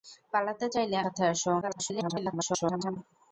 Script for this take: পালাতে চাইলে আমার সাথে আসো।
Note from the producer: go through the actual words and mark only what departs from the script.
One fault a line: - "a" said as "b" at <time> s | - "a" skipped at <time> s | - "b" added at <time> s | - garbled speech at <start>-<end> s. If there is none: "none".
- "আমার" skipped at 1.0 s
- garbled speech at 1.6-3.0 s